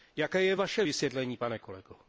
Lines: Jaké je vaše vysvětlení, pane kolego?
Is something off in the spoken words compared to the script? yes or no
no